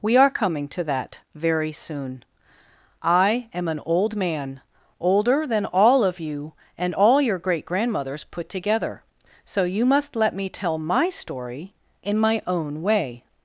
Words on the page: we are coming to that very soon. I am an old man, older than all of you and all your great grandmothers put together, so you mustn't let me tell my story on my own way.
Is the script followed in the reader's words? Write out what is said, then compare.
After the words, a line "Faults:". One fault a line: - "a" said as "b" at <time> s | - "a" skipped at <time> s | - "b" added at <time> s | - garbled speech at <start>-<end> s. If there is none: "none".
we are coming to that very soon. I am an old man, older than all of you and all your great grandmothers put together, so you must let me tell my story in my own way.
Faults:
- "mustn't" said as "must" at 9.9 s
- "on" said as "in" at 12.0 s